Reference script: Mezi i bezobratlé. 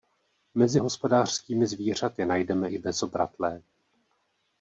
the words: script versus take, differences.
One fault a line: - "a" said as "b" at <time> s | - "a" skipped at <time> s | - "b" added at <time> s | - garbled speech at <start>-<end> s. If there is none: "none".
- "hospodářskými zvířaty najdeme" added at 0.8 s